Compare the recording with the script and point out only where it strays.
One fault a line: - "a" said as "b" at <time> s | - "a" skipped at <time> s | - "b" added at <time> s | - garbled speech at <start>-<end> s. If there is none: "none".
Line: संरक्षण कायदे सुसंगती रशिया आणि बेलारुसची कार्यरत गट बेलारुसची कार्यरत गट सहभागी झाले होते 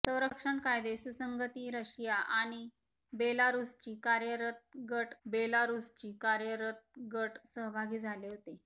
none